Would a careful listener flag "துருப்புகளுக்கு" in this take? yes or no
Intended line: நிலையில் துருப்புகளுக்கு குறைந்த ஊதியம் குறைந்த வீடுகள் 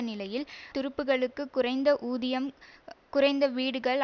no